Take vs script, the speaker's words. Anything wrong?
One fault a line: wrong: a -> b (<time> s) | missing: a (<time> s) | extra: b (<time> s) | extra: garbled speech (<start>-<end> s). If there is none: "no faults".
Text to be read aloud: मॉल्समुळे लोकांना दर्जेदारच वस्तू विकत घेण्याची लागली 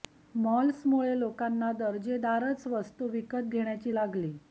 no faults